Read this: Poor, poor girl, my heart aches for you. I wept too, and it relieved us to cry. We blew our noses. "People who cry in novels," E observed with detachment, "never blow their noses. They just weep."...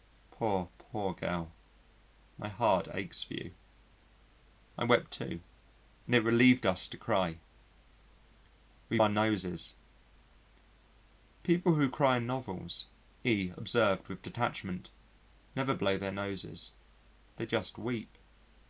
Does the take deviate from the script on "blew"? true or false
true